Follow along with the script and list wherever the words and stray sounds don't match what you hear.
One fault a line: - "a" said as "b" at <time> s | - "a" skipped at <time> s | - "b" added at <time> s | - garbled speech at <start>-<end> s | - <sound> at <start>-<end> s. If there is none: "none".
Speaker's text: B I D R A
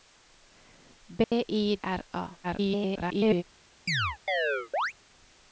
- dropout at 1.2-1.3 s
- "D" skipped at 1.8 s
- garbled speech at 2.4-3.4 s
- chirp at 3.9-4.9 s